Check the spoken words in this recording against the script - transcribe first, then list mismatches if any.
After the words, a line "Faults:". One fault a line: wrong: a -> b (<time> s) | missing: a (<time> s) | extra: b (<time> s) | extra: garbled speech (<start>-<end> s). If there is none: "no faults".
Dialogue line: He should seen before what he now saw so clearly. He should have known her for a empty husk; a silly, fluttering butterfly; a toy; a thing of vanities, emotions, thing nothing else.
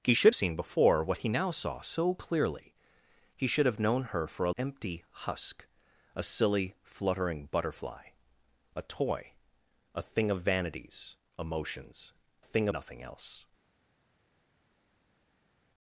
He should seen before what he now saw so clearly. He should have known her for a empty husk; a silly, fluttering butterfly; a toy; a thing of vanities, emotions, thing nothing else.
Faults:
no faults